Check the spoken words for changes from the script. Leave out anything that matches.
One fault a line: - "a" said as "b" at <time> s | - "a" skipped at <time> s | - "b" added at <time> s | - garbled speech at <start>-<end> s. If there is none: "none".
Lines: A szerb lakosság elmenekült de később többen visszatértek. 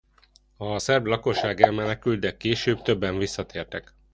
none